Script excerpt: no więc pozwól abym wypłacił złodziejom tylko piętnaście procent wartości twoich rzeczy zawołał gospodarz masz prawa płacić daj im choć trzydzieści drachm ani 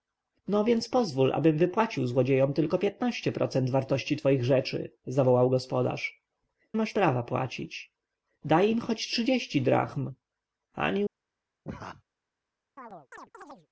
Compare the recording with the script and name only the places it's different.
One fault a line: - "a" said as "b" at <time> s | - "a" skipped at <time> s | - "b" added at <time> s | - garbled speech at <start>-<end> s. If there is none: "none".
none